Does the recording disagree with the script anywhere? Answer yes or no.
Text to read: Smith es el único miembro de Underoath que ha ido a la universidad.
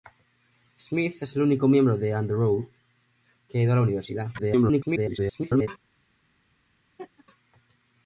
yes